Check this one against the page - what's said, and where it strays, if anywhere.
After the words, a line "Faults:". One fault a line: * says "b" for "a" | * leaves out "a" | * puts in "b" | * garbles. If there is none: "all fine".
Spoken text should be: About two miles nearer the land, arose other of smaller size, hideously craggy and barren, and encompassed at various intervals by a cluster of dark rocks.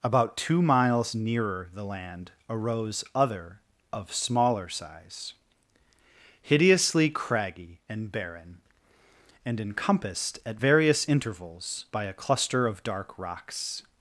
About two miles nearer the land, arose other of smaller size, hideously craggy and barren, and encompassed at various intervals by a cluster of dark rocks.
Faults:
all fine